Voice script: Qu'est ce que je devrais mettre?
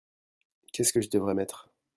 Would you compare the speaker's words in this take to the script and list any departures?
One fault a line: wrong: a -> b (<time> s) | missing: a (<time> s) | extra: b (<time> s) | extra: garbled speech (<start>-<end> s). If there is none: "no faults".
no faults